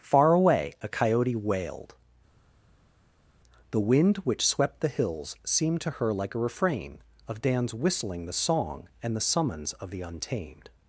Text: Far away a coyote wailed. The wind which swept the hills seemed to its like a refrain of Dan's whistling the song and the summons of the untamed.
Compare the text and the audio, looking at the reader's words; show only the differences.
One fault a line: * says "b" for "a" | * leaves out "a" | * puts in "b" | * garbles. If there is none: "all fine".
* says "her" for "its"